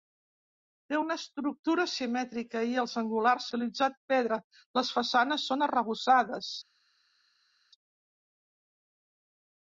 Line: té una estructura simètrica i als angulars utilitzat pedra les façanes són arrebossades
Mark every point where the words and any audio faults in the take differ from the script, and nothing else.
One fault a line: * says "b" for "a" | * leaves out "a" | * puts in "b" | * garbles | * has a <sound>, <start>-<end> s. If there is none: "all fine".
all fine